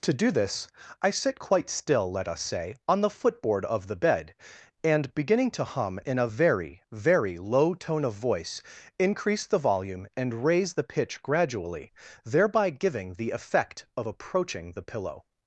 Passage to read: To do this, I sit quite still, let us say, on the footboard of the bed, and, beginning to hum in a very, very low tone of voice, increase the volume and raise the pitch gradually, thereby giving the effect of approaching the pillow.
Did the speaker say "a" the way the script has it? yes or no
yes